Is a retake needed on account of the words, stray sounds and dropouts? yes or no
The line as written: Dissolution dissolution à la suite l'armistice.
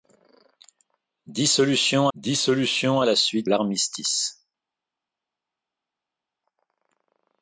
no